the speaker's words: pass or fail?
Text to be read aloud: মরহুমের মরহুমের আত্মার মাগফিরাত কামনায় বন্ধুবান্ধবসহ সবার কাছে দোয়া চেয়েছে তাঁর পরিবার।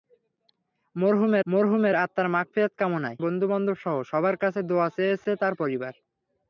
pass